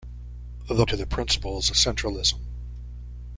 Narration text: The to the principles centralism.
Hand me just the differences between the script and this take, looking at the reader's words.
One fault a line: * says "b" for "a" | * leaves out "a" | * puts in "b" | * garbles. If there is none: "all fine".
all fine